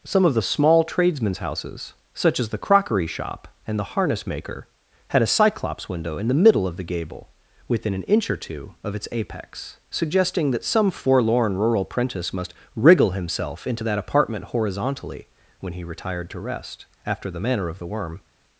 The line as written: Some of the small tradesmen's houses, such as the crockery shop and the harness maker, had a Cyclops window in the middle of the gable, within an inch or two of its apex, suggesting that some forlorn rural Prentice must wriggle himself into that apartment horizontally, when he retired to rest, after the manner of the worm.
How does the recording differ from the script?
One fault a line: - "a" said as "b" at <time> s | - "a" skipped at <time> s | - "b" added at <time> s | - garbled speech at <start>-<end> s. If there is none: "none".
none